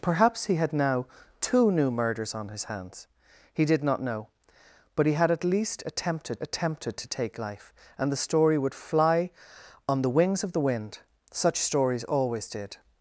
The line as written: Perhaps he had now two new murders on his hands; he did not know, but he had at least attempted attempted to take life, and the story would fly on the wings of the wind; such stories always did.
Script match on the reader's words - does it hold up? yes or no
yes